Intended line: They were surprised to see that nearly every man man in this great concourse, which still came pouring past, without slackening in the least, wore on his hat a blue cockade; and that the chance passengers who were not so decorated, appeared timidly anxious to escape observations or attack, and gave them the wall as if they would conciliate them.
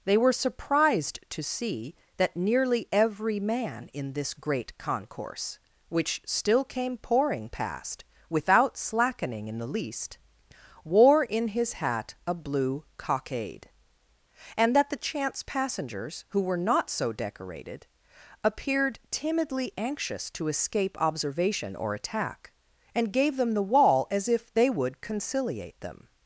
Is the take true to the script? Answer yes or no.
no